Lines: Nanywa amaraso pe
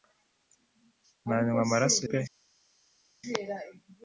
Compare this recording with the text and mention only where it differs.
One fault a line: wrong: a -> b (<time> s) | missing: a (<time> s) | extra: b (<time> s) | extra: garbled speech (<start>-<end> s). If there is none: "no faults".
no faults